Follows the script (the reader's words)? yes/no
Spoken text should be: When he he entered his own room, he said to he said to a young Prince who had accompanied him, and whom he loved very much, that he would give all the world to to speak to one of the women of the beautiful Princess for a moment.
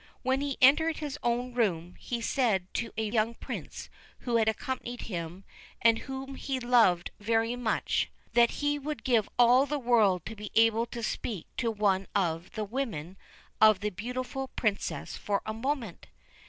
no